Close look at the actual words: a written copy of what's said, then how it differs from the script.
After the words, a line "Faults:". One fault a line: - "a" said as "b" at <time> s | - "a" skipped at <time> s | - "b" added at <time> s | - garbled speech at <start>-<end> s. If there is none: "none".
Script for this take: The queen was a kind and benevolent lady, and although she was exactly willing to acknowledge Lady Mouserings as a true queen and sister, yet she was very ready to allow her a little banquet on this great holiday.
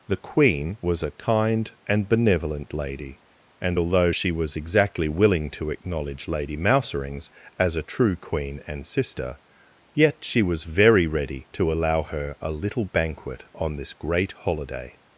The queen was a kind and benevolent lady, and although she was exactly willing to acknowledge Lady Mouserings as a true queen and sister, yet she was very ready to allow her a little banquet on this great holiday.
Faults:
none